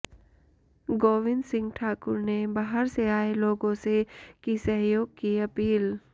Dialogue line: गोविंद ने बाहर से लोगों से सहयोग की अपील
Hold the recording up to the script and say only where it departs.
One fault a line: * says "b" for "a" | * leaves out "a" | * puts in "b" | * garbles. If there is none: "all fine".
* puts in "सिंह ठाकुर"
* puts in "आए"
* puts in "की"